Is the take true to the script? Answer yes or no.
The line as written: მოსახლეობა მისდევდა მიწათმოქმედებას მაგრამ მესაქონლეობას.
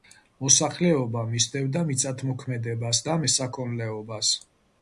no